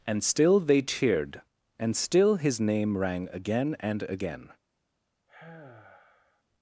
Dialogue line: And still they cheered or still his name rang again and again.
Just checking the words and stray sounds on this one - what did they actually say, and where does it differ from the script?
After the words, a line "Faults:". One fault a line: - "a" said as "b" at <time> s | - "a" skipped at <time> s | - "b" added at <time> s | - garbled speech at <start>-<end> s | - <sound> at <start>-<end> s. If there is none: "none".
And still they cheered and still his name rang again and again.
Faults:
- "or" said as "and" at 1.8 s
- sigh at 5.3-6.4 s